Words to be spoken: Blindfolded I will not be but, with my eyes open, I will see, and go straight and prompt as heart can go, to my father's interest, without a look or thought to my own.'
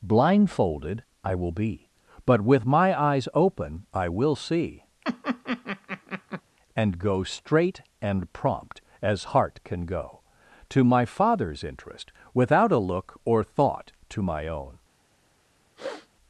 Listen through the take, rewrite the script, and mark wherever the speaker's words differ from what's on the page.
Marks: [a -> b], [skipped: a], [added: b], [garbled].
Blindfolded I will [skipped: not] be but, with my eyes open, I will see, and go straight and prompt as heart can go, to my father's interest, without a look or thought to my own.'